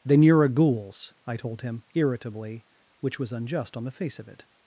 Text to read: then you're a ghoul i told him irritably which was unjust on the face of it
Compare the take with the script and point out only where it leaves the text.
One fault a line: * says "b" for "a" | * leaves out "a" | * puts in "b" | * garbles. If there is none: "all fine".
* says "ghouls" for "ghoul"